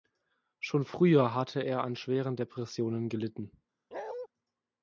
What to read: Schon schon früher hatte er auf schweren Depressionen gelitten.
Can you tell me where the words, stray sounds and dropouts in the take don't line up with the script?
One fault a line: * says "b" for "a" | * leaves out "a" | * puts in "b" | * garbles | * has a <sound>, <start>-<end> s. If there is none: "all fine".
* leaves out "schon"
* says "an" for "auf"
* has a bark, 3.9-4.3 s